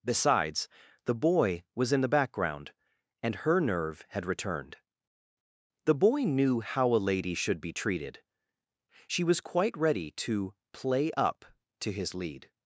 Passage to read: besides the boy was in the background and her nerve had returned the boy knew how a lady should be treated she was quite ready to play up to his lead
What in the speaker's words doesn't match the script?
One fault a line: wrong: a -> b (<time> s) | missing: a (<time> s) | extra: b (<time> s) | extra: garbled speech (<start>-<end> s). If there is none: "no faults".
no faults